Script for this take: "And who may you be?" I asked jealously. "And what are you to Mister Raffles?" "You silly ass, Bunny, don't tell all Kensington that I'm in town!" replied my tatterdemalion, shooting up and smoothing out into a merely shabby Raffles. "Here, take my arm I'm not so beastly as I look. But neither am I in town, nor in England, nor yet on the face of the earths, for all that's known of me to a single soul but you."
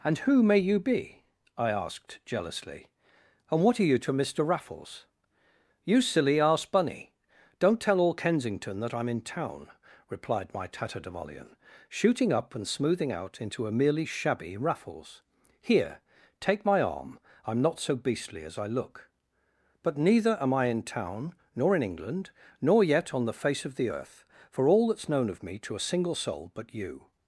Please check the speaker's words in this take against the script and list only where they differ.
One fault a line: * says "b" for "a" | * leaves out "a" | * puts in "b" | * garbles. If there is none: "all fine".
* says "earth" for "earths"